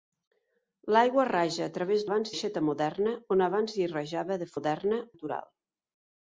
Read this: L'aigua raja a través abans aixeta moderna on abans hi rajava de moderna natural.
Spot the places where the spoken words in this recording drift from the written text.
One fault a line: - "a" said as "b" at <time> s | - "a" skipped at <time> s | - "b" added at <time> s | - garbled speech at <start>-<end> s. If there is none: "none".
none